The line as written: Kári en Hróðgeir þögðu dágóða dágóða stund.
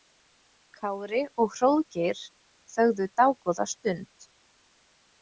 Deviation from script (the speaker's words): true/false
true